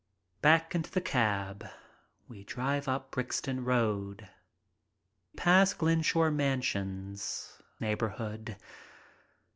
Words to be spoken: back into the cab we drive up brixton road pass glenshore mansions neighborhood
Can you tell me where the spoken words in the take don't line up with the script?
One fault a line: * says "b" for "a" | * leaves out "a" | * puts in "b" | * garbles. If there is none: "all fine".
all fine